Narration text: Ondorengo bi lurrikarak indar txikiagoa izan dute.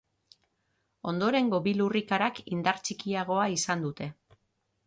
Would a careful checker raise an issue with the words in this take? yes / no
no